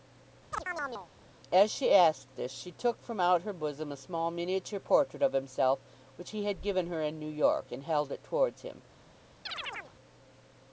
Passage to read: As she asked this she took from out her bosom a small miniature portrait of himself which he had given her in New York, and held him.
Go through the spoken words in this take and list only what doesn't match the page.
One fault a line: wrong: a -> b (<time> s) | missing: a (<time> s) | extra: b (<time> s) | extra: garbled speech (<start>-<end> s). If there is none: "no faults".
extra: it towards (8.1 s)